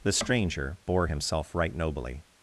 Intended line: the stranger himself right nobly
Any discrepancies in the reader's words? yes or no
yes